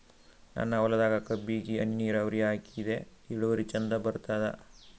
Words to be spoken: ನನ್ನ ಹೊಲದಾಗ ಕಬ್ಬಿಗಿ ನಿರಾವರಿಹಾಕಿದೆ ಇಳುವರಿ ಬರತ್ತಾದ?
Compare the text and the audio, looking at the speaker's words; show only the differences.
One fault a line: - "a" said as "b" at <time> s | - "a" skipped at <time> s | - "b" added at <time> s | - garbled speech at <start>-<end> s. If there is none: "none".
- "ಹನಿ" added at 1.8 s
- "ಚಂದ" added at 3.6 s